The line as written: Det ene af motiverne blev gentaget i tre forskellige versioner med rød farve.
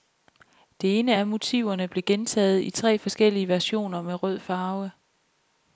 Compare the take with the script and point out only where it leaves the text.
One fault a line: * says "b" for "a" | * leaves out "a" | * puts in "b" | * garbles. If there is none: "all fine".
all fine